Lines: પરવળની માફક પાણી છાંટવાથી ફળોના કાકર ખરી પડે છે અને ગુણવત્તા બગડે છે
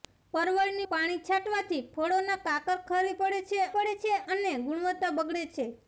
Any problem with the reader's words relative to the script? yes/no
yes